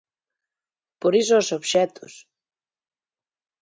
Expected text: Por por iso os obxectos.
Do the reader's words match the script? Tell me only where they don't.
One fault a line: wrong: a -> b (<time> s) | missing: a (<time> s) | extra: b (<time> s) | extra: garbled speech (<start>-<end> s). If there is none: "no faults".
missing: por (1.1 s)